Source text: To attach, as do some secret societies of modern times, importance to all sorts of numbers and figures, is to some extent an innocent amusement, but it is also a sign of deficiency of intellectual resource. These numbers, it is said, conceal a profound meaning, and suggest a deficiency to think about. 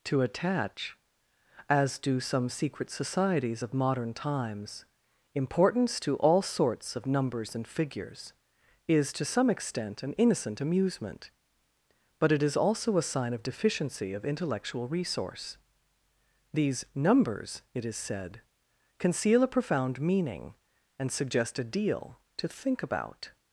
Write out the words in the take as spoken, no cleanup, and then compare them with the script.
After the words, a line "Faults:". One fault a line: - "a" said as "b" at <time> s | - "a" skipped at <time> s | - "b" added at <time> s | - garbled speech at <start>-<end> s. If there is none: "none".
To attach, as do some secret societies of modern times, importance to all sorts of numbers and figures, is to some extent an innocent amusement, but it is also a sign of deficiency of intellectual resource. These numbers, it is said, conceal a profound meaning, and suggest a deal to think about.
Faults:
- "deficiency" said as "deal" at 21.6 s